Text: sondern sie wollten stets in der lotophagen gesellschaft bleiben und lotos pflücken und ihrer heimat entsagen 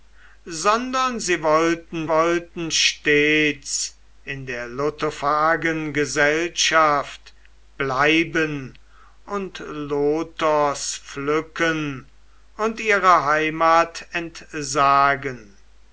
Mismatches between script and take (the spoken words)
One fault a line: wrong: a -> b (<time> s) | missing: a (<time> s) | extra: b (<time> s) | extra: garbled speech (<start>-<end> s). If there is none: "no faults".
extra: wollten (2.1 s)